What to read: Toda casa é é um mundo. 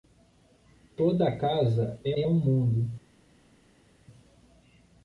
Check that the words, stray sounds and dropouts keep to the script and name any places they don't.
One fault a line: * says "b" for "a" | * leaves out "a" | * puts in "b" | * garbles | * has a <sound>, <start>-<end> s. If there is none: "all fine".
all fine